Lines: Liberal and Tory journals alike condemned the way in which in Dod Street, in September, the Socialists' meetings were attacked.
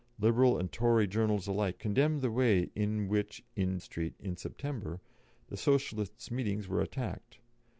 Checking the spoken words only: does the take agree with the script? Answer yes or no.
no